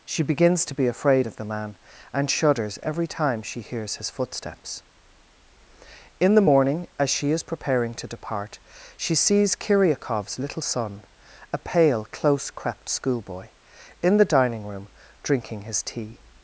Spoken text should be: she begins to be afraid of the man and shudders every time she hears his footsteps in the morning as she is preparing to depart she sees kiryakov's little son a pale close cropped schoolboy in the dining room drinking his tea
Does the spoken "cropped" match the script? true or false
false